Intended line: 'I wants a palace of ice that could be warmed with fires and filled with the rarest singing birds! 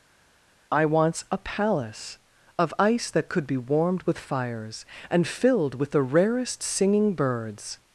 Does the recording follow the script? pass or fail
pass